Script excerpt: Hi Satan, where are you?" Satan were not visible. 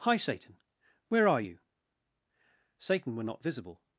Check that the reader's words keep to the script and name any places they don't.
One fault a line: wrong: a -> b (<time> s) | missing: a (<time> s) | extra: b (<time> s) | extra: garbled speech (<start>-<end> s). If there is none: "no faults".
no faults